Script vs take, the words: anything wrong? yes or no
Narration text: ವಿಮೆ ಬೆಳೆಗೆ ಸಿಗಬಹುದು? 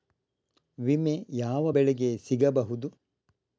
yes